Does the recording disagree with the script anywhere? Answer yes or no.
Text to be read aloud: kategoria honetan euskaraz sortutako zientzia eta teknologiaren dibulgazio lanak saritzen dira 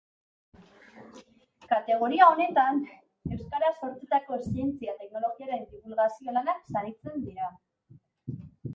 yes